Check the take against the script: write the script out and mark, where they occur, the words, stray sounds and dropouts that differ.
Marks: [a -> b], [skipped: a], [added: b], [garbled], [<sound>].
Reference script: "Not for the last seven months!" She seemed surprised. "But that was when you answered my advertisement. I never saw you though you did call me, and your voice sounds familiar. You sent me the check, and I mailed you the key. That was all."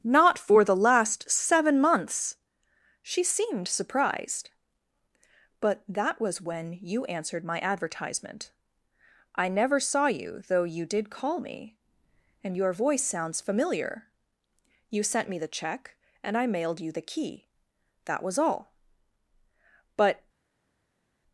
"Not for the last seven months!" She seemed surprised. "But that was when you answered my advertisement. I never saw you though you did call me, and your voice sounds familiar. You sent me the check, and I mailed you the key. That was all." [added: But]